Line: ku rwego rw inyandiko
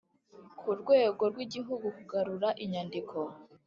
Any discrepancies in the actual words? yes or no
yes